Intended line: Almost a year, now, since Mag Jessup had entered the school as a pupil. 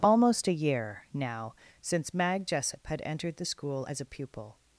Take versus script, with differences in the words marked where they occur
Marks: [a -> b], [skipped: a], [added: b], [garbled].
Almost a year, now, since Mag Jessup had entered the school as a pupil.